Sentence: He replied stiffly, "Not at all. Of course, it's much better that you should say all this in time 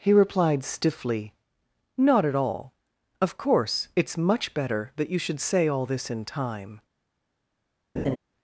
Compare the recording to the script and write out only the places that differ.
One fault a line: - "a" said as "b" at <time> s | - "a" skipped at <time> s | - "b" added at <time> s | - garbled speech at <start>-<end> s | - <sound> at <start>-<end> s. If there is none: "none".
- laugh at 8.0-8.2 s